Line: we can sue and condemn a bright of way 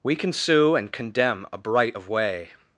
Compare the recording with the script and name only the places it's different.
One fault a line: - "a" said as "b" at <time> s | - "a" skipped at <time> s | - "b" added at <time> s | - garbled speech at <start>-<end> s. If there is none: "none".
none